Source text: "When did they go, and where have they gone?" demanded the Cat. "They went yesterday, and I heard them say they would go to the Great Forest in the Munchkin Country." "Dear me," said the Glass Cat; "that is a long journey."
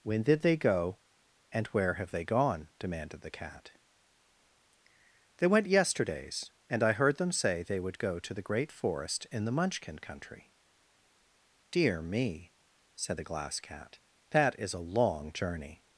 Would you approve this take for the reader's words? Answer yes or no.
no